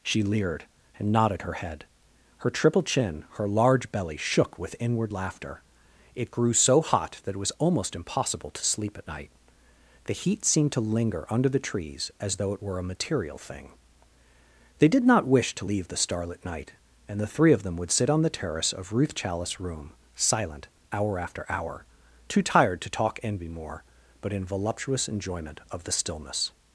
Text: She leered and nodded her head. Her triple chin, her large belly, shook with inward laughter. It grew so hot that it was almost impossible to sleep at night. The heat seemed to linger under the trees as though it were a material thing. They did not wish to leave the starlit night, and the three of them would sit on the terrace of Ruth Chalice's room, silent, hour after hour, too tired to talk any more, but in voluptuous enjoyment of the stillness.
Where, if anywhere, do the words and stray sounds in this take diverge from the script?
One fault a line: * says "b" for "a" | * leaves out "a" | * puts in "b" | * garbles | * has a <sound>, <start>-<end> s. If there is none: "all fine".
* says "envy" for "any"